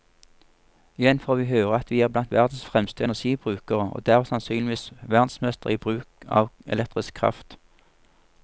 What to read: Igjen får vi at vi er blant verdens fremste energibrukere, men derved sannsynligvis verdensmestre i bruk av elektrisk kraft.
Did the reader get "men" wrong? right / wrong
wrong